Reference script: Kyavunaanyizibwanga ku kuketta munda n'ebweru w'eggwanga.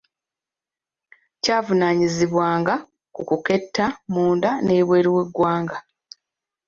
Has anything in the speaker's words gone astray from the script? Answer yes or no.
no